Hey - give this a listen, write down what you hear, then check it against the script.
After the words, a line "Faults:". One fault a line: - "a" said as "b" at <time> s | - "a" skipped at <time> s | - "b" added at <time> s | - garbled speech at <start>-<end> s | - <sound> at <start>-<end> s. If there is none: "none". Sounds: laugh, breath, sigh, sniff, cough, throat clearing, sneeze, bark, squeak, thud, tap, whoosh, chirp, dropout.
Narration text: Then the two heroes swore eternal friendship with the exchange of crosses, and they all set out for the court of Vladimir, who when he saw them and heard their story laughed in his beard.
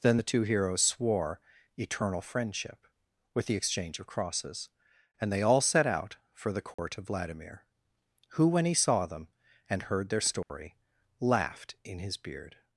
Then the two heroes swore eternal friendship with the exchange of crosses, and they all set out for the court of Vladimir, who when he saw them and heard their story laughed in his beard.
Faults:
- dropout at 6.7-6.8 s
- dropout at 10.4-10.5 s